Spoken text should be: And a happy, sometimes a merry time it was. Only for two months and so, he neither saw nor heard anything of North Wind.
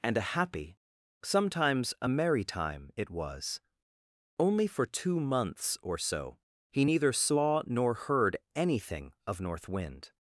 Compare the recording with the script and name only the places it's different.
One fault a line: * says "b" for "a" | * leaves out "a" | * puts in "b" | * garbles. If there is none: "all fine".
* says "or" for "and"